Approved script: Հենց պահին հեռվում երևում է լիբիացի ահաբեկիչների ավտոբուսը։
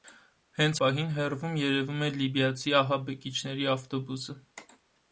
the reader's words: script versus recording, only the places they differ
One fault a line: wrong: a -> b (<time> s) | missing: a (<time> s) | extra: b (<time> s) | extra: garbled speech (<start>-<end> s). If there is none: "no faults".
no faults